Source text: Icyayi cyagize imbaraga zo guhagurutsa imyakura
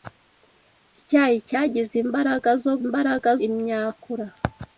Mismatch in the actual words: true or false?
true